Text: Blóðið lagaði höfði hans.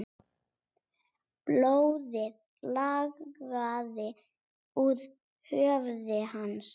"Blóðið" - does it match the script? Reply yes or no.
yes